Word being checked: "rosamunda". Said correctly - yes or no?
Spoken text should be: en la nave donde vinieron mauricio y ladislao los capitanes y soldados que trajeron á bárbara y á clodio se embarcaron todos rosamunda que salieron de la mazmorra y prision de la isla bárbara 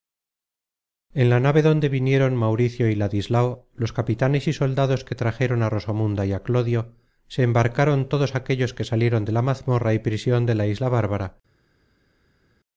no